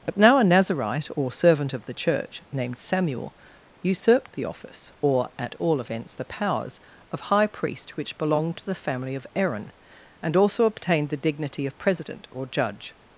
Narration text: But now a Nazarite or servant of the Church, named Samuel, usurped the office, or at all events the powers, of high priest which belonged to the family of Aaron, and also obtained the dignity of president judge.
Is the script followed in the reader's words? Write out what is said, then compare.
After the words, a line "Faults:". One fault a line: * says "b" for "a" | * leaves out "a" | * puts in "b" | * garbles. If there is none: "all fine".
But now a Nazarite or servant of the Church, named Samuel, usurped the office, or at all events the powers, of high priest which belonged to the family of Aaron, and also obtained the dignity of president or judge.
Faults:
* puts in "or"